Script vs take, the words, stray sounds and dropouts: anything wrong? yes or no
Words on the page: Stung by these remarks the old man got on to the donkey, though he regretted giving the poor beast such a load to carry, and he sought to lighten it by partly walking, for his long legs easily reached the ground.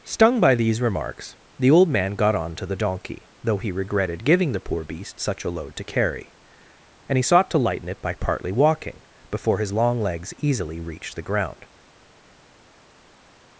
yes